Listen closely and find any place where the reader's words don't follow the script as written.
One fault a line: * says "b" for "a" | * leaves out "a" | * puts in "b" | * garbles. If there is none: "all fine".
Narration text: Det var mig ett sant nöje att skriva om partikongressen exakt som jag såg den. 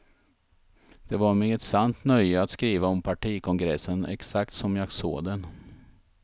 all fine